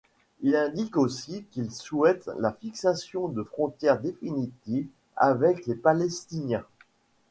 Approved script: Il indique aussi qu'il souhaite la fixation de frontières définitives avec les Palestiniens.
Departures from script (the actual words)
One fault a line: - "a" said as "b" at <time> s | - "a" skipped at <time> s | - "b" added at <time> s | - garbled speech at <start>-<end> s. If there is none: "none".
none